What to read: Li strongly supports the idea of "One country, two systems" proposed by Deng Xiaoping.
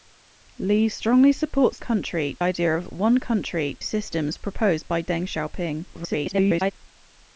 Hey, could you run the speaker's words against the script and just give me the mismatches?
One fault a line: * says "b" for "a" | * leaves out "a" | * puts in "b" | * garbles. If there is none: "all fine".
* says "country" for "the"
* leaves out "two"
* garbles